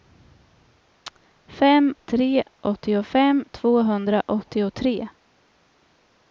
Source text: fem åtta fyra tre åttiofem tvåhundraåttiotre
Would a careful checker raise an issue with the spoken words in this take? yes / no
yes